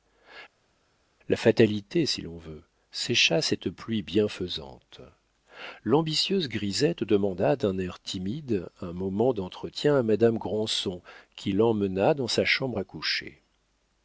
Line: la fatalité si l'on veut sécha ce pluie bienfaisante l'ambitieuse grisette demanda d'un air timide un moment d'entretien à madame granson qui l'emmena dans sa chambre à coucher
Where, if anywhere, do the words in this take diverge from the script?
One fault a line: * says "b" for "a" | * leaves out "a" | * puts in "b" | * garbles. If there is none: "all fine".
* says "cette" for "ce"